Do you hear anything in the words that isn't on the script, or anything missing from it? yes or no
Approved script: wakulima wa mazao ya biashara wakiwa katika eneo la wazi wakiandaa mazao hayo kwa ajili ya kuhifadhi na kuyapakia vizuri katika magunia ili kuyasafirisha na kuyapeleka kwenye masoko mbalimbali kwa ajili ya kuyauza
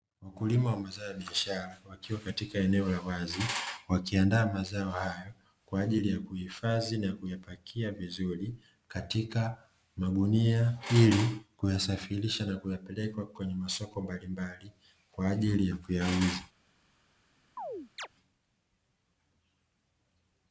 no